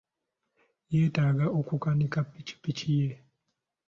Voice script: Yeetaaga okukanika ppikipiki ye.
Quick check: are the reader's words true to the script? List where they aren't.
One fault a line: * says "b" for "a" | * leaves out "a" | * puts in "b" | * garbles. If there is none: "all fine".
all fine